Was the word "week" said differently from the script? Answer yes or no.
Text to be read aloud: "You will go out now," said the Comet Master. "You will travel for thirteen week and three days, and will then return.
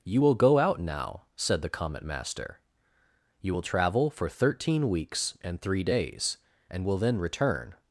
yes